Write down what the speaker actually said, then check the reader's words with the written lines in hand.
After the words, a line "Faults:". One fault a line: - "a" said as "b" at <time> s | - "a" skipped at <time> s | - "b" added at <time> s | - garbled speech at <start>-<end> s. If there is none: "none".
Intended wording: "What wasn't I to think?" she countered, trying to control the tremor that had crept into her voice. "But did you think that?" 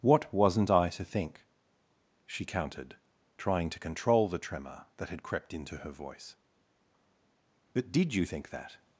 "What wasn't I to think?" she countered, trying to control the tremor that had crept into her voice. "But did you think that?"
Faults:
none